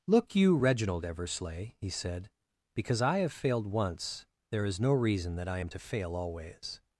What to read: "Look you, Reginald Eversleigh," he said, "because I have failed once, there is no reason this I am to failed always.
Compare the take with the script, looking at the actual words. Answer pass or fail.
fail